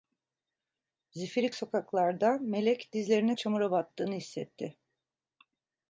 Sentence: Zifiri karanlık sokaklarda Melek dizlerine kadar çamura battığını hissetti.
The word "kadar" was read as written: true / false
false